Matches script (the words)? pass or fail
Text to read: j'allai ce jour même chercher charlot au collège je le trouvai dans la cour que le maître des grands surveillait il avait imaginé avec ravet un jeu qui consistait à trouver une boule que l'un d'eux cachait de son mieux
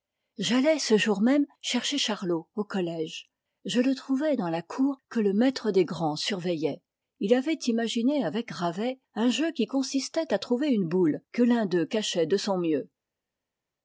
pass